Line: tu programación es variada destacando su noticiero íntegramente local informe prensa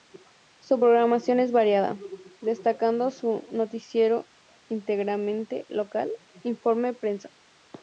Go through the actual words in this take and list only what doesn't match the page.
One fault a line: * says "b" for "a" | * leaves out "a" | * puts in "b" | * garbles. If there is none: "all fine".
* says "su" for "tu"